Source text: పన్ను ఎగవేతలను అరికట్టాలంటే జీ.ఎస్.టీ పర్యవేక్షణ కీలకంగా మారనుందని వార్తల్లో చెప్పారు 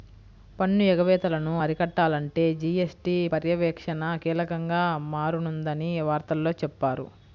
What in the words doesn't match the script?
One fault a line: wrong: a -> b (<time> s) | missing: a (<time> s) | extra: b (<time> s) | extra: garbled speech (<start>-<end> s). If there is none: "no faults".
no faults